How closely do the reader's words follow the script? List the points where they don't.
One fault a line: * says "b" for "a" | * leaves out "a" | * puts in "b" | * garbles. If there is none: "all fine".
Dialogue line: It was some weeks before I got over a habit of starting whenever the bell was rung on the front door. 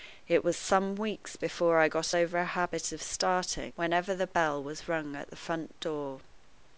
* says "at" for "on"